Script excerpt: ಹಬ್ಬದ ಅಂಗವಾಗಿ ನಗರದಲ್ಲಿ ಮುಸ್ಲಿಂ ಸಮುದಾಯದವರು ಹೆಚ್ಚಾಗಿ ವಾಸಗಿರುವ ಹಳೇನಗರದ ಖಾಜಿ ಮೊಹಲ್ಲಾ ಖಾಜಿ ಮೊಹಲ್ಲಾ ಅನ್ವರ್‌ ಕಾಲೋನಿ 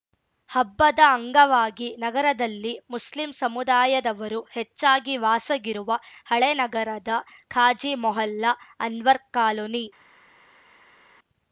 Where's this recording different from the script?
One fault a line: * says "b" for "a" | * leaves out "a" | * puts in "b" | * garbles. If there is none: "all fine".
* leaves out "ಖಾಜಿ ಮೊಹಲ್ಲಾ"